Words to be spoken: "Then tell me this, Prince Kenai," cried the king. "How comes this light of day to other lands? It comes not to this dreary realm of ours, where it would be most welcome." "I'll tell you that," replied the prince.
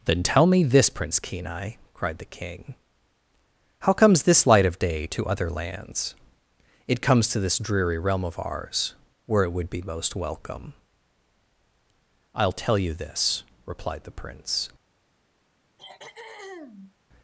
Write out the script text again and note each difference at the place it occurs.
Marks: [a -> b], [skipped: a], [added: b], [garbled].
"Then tell me this, Prince Kenai," cried the king. "How comes this light of day to other lands? It comes [skipped: not] to this dreary realm of ours, where it would be most welcome." "I'll tell you [that," -> this] replied the prince.